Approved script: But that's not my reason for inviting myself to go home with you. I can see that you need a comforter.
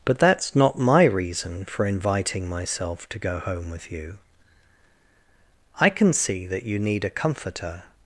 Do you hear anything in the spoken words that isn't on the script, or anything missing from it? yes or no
no